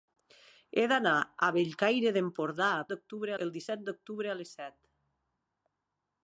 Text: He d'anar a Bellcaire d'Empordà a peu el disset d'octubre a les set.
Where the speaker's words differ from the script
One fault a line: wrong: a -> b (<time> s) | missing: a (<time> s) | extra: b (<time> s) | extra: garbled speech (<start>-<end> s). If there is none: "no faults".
wrong: peu -> d'octubre (2.9 s)